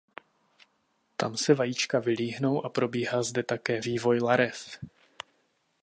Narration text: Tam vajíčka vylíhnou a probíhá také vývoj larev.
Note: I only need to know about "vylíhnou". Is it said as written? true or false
true